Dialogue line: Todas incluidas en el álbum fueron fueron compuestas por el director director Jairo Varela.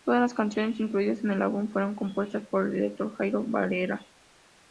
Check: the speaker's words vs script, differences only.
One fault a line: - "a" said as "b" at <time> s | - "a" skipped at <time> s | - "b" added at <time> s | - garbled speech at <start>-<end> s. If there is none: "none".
- "las canciones" added at 0.2 s
- "fueron" skipped at 1.9 s
- "director" skipped at 3.1 s